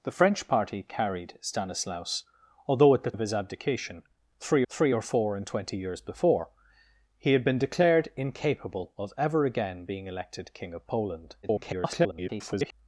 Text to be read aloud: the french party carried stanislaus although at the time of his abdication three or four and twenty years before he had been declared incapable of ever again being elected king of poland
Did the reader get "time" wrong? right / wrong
wrong